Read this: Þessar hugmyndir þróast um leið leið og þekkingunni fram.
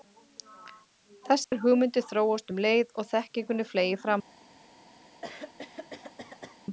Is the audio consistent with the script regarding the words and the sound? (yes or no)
no